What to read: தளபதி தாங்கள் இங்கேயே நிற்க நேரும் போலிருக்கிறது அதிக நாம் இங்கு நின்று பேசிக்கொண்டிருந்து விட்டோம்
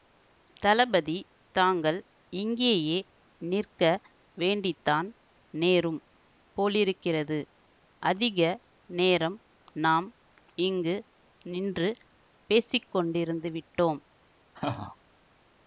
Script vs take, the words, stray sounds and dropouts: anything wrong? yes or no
yes